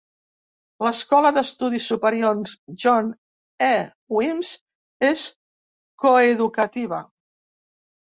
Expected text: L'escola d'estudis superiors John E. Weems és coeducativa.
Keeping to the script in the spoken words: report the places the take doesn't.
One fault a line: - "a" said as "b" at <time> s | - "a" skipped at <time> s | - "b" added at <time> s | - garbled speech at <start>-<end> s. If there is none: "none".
none